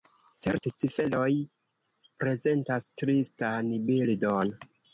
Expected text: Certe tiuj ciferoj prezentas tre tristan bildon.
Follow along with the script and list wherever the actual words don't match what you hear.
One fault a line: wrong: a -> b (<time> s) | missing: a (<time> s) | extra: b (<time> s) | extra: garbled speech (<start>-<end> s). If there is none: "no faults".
missing: tiuj (0.7 s)
missing: tre (2.9 s)